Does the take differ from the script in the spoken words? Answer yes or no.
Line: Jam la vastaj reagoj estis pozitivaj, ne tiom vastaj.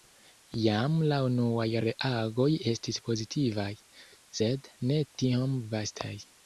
yes